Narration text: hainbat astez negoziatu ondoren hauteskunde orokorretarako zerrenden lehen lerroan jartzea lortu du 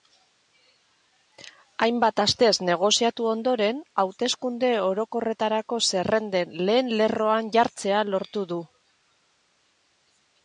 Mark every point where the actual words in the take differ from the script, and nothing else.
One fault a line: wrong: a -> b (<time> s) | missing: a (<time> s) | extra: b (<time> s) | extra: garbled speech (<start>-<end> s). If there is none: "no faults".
no faults